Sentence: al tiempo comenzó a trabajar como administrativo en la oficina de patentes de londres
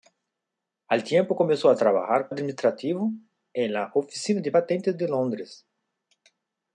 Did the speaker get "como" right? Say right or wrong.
wrong